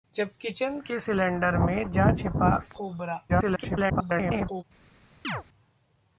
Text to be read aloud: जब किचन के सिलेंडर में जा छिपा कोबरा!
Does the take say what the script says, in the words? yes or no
no